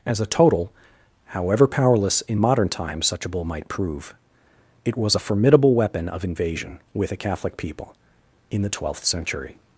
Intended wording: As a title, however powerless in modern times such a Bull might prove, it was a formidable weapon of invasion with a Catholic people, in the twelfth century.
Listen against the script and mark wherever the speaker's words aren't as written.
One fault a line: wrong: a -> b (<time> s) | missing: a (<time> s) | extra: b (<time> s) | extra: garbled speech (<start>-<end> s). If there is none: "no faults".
wrong: title -> total (0.2 s)